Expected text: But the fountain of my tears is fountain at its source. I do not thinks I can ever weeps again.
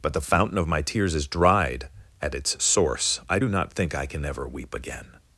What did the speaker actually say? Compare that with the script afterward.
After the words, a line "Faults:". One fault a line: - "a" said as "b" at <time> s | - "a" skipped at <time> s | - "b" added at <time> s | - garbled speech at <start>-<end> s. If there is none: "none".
But the fountain of my tears is dried at its source. I do not think I can ever weep again.
Faults:
- "fountain" said as "dried" at 1.3 s
- "thinks" said as "think" at 3.7 s
- "weeps" said as "weep" at 4.5 s